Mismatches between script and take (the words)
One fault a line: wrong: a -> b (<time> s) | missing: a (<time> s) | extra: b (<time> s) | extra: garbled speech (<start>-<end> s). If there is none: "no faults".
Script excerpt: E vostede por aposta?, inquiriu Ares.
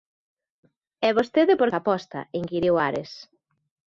no faults